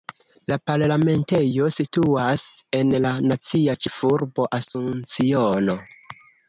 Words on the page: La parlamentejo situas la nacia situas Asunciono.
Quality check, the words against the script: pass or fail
fail